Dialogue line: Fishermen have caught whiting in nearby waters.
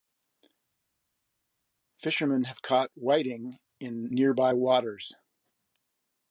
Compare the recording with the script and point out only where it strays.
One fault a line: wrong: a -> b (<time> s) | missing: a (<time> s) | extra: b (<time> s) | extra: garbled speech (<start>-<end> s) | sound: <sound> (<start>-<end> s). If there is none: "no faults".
no faults